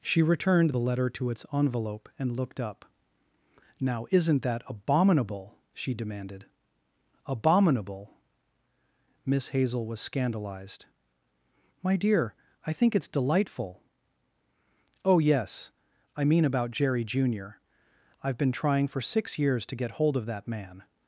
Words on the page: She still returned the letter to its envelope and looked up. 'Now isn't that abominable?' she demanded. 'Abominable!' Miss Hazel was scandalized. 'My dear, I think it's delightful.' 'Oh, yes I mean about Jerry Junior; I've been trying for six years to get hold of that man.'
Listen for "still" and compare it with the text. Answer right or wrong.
wrong